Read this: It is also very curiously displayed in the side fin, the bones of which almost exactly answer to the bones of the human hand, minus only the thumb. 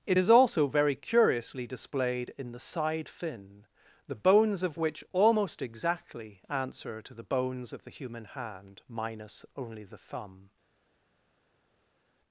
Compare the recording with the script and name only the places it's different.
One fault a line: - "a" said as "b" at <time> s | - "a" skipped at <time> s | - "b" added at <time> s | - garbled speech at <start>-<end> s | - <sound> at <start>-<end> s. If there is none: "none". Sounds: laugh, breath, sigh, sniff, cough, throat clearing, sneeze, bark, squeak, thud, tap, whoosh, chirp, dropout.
none